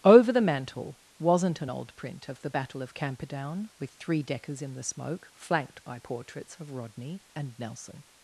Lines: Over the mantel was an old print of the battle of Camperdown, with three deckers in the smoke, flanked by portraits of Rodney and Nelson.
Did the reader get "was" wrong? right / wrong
wrong